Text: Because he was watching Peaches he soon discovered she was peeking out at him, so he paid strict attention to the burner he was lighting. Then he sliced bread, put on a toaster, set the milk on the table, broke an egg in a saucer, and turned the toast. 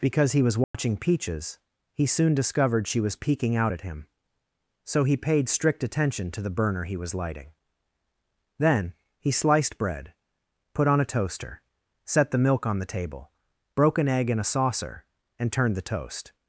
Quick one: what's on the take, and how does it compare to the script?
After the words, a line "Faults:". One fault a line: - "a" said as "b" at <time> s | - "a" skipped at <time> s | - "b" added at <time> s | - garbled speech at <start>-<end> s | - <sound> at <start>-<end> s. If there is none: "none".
Because he was watching Peaches he soon discovered she was peeking out at him, so he paid strict attention to the burner he was lighting. Then he sliced bread, put on a toaster, set the milk on the table, broke an egg in a saucer, and turned the toast.
Faults:
- dropout at 0.6-0.7 s